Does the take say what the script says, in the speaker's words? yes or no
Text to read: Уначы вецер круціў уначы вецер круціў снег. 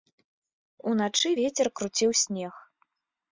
no